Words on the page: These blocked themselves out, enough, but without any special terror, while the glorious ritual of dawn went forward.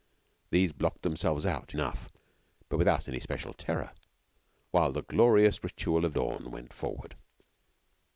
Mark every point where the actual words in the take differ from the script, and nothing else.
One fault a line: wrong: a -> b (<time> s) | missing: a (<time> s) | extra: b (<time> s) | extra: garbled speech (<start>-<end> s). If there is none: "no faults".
no faults